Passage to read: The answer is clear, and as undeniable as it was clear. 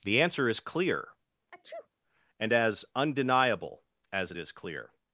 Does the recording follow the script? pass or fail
fail